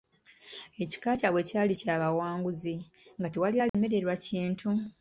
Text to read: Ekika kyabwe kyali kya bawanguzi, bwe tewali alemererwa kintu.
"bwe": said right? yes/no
no